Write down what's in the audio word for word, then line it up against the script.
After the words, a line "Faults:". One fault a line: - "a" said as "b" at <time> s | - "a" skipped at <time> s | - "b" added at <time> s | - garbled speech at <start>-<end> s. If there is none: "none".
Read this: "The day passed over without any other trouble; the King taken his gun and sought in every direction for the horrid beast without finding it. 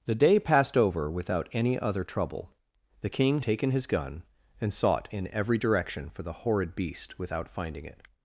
"The day passed over without any other trouble; the King taken his gun and sought in every direction for the horrid beast without finding it.
Faults:
none